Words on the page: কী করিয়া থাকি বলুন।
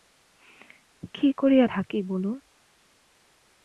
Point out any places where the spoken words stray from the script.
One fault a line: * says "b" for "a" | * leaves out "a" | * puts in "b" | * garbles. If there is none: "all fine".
all fine